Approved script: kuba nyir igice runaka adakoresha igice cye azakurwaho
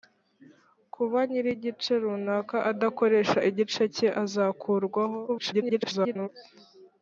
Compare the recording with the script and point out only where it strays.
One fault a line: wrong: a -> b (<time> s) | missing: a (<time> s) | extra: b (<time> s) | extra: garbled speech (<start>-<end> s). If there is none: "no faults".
extra: garbled speech (5.3-6.3 s)